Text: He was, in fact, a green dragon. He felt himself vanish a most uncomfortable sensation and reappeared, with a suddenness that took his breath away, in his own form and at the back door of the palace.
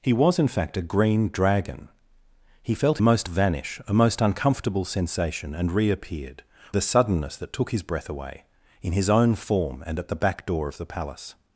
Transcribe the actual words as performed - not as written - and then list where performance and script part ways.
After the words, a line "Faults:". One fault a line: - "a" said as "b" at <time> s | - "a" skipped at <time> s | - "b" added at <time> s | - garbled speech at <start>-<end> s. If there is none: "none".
He was, in fact, a green dragon. He felt most vanish a most uncomfortable sensation and reappeared, a suddenness that took his breath away, in his own form and at the back door of the palace.
Faults:
- "himself" said as "most" at 3.0 s
- "with" skipped at 6.4 s